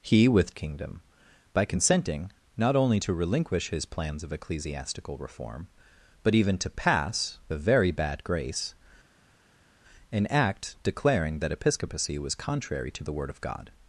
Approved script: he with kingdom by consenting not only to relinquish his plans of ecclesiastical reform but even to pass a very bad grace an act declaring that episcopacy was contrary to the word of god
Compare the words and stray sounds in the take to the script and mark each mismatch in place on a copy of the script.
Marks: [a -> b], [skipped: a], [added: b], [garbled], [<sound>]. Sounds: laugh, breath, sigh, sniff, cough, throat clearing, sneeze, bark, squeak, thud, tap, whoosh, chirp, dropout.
he with kingdom by consenting not only to relinquish his plans of ecclesiastical reform but even to pass a very bad grace an act declaring that episcopacy was contrary to the word of god